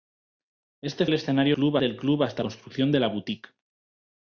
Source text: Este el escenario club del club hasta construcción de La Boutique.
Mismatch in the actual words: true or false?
false